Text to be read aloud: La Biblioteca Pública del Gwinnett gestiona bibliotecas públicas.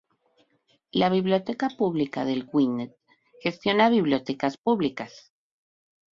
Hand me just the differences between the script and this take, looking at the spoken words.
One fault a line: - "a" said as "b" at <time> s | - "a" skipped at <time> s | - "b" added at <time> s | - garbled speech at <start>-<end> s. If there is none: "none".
none